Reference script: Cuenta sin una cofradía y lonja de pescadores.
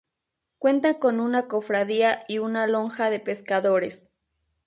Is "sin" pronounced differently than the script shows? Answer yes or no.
yes